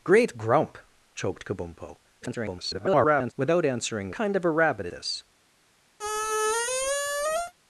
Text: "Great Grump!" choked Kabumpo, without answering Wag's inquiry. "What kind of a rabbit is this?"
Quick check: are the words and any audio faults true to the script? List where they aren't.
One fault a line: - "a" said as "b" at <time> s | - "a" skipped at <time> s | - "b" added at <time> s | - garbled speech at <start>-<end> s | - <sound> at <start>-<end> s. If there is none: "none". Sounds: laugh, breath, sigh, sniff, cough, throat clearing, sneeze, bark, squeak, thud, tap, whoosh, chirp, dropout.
- garbled speech at 2.2-3.3 s
- "Wag's inquiry What" skipped at 4.1 s
- "is" skipped at 4.9 s
- squeak at 6.0-7.5 s